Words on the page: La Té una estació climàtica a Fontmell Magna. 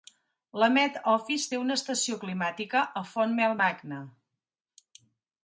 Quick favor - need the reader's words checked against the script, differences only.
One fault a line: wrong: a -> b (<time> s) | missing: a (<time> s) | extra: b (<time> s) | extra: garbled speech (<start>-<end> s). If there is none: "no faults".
extra: Met Office (0.8 s)